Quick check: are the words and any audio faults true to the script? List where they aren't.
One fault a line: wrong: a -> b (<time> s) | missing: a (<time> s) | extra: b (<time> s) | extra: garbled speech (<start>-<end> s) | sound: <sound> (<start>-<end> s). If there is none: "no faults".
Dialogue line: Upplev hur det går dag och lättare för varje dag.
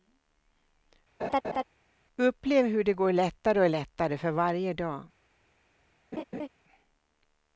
sound: laugh (1.2-1.6 s)
wrong: dag -> lättare (3.1 s)
sound: laugh (6.1-6.5 s)